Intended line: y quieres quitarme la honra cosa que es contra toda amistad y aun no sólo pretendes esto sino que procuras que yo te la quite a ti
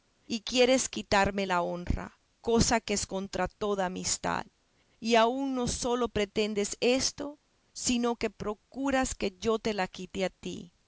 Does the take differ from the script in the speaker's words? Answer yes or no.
no